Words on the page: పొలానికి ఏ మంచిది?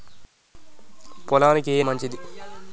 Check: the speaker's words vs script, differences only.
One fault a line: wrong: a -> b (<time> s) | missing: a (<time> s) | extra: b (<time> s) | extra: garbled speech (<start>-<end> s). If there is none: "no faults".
no faults